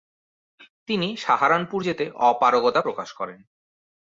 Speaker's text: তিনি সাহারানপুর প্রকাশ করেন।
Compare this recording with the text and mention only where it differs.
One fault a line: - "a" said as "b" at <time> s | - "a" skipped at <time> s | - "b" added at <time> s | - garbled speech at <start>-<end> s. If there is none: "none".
- "যেতে অপারগতা" added at 1.8 s